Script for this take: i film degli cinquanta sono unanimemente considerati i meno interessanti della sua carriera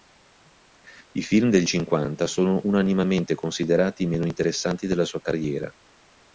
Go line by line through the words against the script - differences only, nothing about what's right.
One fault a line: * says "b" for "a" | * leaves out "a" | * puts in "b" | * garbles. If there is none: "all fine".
all fine